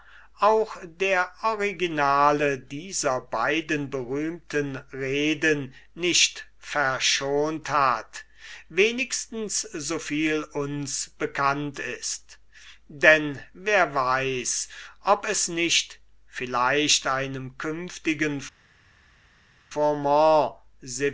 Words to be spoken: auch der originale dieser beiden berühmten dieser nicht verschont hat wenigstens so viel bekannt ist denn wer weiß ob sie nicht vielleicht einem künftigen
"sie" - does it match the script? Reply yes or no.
no